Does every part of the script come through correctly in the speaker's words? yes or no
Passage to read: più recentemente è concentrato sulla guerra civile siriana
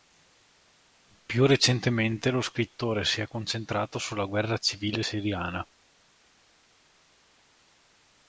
no